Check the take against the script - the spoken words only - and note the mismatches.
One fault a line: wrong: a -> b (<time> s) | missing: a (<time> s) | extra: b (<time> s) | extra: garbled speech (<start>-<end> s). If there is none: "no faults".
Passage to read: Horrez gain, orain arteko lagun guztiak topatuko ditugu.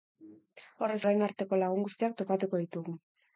missing: gain (1.0 s)